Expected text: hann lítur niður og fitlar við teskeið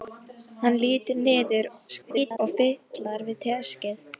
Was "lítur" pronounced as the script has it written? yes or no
yes